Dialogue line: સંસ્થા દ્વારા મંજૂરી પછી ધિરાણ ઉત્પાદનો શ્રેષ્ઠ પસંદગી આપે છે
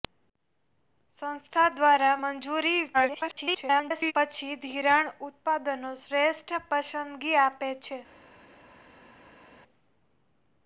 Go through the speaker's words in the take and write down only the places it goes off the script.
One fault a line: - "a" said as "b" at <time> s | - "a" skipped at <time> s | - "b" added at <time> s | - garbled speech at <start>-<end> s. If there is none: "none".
- garbled speech at 2.9-4.1 s